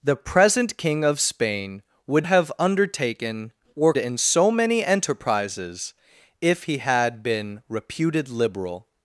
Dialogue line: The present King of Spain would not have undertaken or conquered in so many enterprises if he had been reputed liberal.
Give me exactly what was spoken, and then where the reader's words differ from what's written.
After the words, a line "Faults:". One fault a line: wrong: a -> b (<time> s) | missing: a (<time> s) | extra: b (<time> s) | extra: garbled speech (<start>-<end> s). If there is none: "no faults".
The present King of Spain would have undertaken or in so many enterprises if he had been reputed liberal.
Faults:
missing: not (2.2 s)
missing: conquered (3.9 s)